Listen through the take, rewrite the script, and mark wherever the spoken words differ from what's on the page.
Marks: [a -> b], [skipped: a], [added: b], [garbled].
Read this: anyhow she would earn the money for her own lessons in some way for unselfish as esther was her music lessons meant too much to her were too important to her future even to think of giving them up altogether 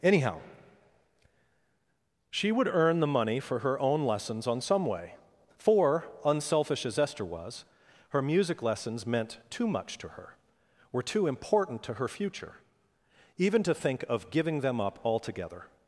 anyhow she would earn the money for her own lessons [in -> on] some way for unselfish as esther was her music lessons meant too much to her were too important to her future even to think of giving them up altogether